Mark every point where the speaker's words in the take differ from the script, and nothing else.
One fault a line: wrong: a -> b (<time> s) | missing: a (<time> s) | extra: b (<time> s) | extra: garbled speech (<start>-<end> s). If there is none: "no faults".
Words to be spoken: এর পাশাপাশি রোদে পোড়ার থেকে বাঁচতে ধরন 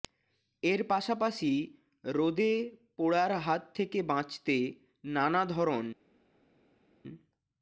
extra: হাত (3.4 s)
extra: নানা (5.1 s)